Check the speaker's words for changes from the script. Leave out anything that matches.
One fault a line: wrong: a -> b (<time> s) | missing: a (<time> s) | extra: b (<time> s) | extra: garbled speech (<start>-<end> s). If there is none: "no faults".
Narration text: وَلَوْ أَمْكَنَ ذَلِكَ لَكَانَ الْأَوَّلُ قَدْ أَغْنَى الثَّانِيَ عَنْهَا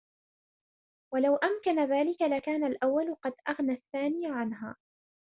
no faults